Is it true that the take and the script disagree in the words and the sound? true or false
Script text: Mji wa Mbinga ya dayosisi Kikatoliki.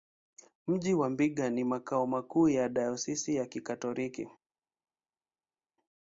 true